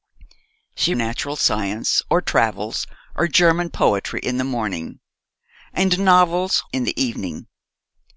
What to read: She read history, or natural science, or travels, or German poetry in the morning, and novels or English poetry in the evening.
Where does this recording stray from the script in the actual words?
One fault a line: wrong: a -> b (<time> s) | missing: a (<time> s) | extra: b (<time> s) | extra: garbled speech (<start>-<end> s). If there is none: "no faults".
missing: read history or (0.9 s)
missing: or English poetry (6.6 s)